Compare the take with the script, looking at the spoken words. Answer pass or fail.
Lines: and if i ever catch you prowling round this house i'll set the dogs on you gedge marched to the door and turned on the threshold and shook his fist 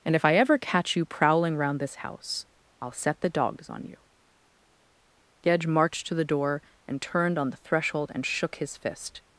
pass